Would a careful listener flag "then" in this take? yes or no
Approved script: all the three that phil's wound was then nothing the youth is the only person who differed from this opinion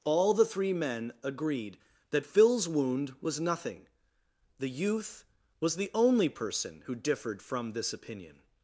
yes